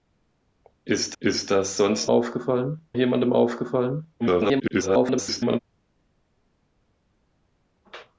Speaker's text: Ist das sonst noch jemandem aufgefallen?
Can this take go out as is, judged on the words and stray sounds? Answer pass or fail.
fail